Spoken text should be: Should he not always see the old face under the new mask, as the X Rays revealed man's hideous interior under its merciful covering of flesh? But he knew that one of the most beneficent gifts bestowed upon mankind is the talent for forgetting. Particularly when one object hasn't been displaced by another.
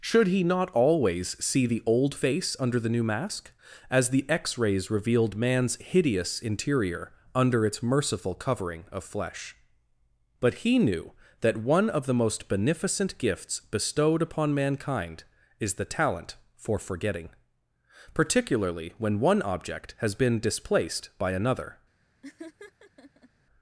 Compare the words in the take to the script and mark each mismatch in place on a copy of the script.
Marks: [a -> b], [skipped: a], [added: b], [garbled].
Should he not always see the old face under the new mask, as the X Rays revealed man's hideous interior under its merciful covering of flesh? But he knew that one of the most beneficent gifts bestowed upon mankind is the talent for forgetting. Particularly when one object [hasn't -> has] been displaced by another.